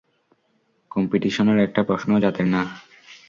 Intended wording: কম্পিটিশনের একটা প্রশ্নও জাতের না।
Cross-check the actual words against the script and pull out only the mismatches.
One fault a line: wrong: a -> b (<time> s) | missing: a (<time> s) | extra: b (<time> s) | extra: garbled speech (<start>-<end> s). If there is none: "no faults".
no faults